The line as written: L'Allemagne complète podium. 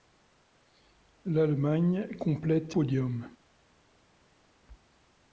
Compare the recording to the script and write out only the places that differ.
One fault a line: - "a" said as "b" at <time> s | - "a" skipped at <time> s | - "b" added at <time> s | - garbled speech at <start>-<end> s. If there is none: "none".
none